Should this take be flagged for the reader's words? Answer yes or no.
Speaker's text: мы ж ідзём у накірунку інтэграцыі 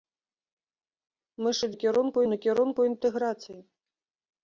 yes